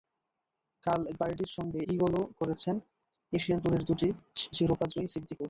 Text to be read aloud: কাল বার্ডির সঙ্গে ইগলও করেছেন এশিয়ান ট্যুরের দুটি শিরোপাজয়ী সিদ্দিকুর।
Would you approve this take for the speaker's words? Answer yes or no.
yes